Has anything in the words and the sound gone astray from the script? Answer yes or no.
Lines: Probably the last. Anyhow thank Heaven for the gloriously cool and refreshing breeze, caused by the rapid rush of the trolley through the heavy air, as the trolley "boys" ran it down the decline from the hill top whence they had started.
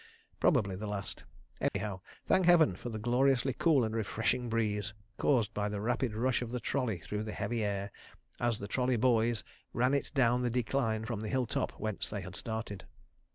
yes